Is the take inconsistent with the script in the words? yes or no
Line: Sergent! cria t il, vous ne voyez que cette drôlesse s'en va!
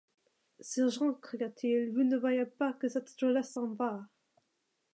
yes